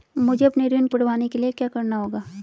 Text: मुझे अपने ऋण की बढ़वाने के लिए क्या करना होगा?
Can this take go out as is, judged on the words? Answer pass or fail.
pass